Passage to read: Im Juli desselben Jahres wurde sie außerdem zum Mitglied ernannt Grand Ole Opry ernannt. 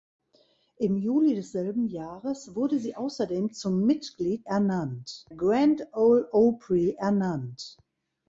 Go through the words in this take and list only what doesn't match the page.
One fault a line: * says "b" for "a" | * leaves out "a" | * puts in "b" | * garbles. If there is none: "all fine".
all fine